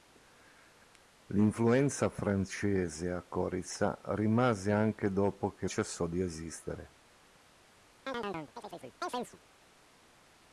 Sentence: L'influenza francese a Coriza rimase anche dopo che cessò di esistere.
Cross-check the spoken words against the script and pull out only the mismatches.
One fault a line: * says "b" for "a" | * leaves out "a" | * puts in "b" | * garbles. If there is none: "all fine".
all fine